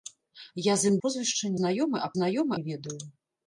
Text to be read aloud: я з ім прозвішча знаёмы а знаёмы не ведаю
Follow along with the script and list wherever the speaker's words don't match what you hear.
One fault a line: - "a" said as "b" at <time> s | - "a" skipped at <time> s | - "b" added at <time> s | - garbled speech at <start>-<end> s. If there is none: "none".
none